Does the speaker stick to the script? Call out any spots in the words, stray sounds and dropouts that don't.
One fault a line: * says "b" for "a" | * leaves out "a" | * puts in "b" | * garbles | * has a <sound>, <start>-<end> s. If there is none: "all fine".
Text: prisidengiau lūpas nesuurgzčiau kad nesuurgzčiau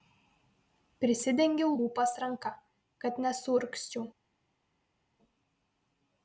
* says "ranka" for "nesuurgzčiau"